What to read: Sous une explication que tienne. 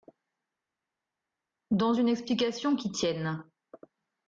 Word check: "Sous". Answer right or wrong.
wrong